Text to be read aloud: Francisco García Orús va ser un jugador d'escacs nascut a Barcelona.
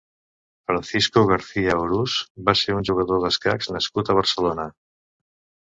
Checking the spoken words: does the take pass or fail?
pass